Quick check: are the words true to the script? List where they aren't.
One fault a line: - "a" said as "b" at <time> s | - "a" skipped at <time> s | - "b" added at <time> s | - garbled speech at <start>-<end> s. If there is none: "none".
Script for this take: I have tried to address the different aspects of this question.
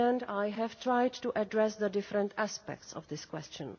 none